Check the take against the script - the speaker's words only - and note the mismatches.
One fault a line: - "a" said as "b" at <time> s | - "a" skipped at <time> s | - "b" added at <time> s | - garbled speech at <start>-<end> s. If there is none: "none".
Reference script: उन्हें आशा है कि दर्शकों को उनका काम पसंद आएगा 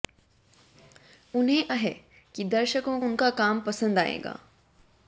- "आशा" skipped at 1.7 s
- "को" skipped at 3.0 s